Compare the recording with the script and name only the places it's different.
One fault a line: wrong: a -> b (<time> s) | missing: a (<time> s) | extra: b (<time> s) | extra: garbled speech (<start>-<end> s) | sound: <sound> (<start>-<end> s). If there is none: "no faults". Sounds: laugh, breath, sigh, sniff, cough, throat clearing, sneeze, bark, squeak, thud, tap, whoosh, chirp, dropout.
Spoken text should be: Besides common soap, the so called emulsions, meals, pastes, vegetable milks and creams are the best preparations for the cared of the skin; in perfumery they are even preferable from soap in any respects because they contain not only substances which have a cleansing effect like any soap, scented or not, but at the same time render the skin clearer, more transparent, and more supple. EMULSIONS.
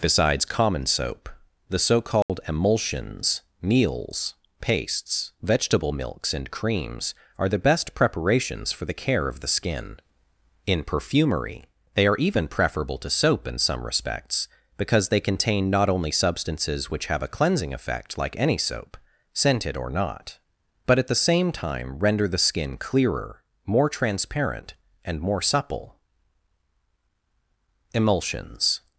sound: dropout (2.2-2.3 s)
wrong: cared -> care (8.9 s)
wrong: from -> to (13.0 s)
wrong: any -> some (13.6 s)